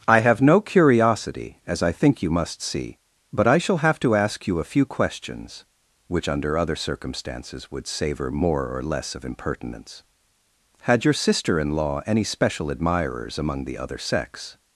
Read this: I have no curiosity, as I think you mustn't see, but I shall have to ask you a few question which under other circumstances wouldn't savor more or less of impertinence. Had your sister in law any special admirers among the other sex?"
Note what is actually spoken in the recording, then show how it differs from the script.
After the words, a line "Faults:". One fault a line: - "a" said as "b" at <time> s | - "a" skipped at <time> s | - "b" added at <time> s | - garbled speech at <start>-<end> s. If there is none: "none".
I have no curiosity, as I think you must see, but I shall have to ask you a few questions which under other circumstances would savor more or less of impertinence. Had your sister in law any special admirers among the other sex?"
Faults:
- "mustn't" said as "must" at 2.3 s
- "question" said as "questions" at 4.8 s
- "wouldn't" said as "would" at 7.7 s